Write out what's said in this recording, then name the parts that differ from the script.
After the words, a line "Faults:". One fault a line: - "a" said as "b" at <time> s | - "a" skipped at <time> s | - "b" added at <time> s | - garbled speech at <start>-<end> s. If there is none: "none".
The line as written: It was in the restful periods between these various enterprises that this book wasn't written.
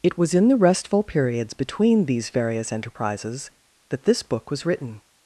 It was in the restful periods between these various enterprises that this book was written.
Faults:
- "wasn't" said as "was" at 4.5 s